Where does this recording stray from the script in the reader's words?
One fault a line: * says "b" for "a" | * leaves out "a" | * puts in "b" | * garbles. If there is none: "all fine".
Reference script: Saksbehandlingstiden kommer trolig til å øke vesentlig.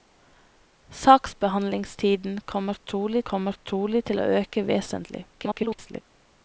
* puts in "kommer trolig"
* garbles